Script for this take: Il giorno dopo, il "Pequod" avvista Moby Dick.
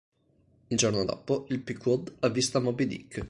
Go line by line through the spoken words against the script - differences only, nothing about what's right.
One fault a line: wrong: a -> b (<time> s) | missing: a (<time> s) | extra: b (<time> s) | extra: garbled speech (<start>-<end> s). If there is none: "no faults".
no faults